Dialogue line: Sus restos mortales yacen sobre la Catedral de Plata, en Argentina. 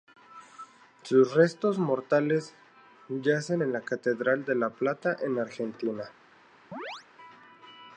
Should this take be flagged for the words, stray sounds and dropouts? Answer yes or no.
yes